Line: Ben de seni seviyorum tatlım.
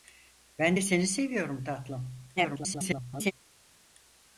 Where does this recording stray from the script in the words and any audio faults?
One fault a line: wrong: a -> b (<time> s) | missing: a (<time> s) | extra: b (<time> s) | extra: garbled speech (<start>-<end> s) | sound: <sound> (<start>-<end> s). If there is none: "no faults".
extra: garbled speech (2.4-3.3 s)